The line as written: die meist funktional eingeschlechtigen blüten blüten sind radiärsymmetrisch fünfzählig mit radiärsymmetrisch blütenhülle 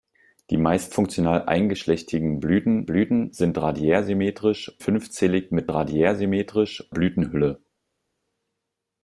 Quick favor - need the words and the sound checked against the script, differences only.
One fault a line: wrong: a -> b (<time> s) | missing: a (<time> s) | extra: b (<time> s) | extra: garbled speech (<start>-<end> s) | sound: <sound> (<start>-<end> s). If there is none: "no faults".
no faults